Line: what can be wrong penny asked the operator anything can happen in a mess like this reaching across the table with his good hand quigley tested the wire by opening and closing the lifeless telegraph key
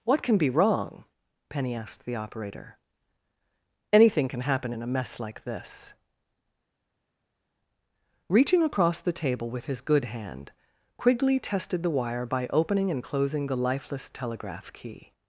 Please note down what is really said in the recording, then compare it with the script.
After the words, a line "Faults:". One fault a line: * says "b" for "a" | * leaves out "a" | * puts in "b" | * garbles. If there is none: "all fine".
what can be wrong penny asked the operator anything can happen in a mess like this reaching across the table with his good hand quigley tested the wire by opening and closing the lifeless telegraph key
Faults:
all fine